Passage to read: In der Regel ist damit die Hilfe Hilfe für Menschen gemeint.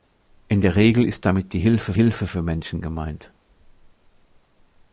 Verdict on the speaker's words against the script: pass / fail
pass